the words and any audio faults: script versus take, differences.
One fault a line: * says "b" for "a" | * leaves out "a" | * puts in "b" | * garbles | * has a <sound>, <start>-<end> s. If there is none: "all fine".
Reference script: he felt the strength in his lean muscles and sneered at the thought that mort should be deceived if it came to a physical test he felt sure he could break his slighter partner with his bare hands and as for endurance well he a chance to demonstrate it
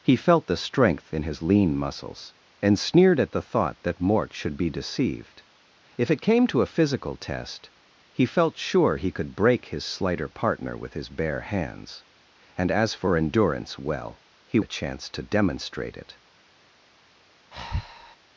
* has a breath, 17.5-18.2 s